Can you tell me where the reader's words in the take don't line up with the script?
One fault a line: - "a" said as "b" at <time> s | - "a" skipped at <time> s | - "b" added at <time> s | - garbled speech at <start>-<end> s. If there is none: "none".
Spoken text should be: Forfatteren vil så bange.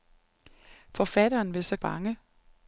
none